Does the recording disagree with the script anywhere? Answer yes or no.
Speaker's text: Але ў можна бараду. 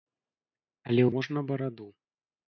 no